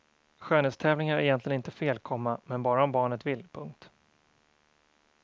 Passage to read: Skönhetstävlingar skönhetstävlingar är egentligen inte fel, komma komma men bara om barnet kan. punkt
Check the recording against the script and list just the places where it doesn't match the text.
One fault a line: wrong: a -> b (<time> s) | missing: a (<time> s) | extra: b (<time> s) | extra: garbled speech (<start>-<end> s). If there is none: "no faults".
missing: skönhetstävlingar (1.2 s)
missing: komma (2.4 s)
wrong: kan -> vill (3.3 s)